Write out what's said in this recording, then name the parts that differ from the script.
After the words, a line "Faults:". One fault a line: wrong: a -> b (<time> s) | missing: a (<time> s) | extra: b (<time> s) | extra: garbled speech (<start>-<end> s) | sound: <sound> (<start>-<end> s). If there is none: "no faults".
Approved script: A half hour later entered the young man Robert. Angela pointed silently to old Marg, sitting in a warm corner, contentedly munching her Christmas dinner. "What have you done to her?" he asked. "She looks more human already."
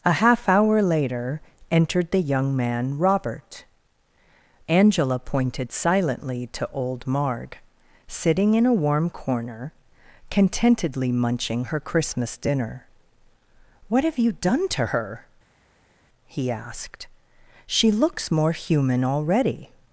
A half hour later entered the young man Robert. Angela pointed silently to old Marg, sitting in a warm corner, contentedly munching her Christmas dinner. "What have you done to her?" he asked. "She looks more human already."
Faults:
no faults